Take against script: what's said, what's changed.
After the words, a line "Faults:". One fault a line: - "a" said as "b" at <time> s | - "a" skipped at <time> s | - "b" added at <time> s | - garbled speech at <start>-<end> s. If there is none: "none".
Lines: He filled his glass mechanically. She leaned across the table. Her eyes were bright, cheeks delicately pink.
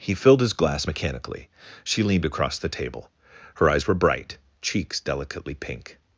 He filled his glass mechanically. She leaned across the table. Her eyes were bright, cheeks delicately pink.
Faults:
none